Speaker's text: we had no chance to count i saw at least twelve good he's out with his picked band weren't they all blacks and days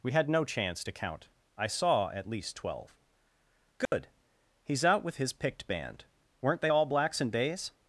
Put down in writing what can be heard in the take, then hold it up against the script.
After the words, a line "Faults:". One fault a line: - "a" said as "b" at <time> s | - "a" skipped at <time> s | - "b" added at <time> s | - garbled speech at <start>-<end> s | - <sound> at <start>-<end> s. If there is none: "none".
we had no chance to count i saw at least twelve good he's out with his picked band weren't they all blacks and days
Faults:
- dropout at 3.9-3.9 s